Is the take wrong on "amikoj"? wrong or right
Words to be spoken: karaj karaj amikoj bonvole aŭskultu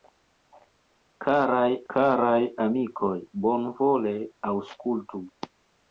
right